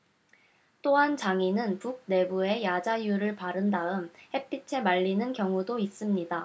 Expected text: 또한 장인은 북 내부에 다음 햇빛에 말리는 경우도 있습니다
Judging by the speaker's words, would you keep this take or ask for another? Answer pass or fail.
fail